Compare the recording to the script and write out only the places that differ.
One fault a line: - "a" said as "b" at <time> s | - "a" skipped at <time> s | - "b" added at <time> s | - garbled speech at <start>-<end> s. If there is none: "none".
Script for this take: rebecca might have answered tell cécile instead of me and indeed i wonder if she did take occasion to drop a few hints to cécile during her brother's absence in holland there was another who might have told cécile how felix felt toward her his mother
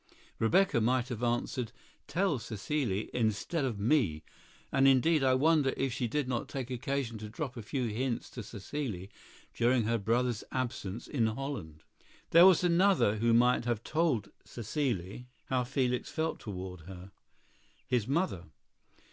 - "not" added at 6.3 s